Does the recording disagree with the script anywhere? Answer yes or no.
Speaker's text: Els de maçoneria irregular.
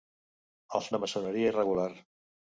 no